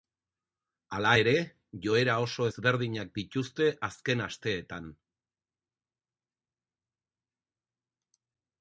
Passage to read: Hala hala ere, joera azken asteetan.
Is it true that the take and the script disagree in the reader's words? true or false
true